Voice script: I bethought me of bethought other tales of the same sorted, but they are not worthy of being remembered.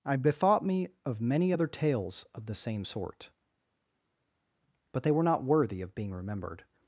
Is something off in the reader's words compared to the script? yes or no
yes